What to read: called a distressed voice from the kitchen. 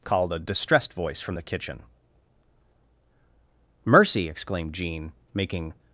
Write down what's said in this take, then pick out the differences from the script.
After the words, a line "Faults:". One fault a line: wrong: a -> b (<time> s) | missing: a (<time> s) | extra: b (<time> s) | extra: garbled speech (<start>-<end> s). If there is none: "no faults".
called a distressed voice from the kitchen. "Mercy!" exclaimed Jean, making
Faults:
extra: Mercy exclaimed Jean making (3.9 s)